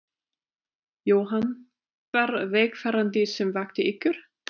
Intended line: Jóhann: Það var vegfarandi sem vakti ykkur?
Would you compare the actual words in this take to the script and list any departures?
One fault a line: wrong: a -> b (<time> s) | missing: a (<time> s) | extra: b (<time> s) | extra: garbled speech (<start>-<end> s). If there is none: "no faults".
missing: Það (1.4 s)